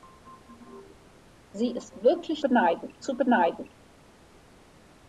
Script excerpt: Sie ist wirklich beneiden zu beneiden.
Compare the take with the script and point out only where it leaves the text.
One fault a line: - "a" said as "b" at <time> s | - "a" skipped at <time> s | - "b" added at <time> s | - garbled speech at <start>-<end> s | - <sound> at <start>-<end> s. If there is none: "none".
none